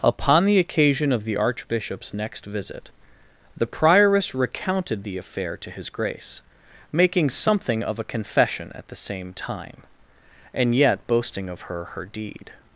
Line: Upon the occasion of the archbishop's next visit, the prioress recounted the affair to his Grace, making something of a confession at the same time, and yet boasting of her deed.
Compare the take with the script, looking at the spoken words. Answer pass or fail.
fail